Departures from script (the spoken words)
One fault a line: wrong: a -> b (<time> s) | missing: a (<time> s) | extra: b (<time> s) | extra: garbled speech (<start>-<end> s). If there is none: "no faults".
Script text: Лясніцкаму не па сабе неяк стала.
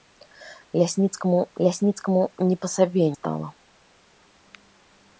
extra: лясніцкаму (1.7 s)
missing: неяк (3.0 s)